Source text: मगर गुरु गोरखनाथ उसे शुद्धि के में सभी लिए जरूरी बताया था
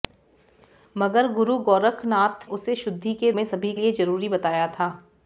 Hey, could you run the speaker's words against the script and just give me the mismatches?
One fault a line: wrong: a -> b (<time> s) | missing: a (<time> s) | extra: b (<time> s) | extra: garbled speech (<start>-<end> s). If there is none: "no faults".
no faults